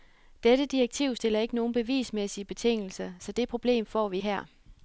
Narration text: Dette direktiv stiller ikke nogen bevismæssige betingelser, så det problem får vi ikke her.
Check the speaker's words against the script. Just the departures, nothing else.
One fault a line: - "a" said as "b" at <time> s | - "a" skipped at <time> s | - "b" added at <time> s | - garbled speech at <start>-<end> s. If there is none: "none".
- "ikke" skipped at 4.2 s